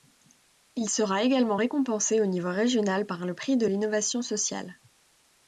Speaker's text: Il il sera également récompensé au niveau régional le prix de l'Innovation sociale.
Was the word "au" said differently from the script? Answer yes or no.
no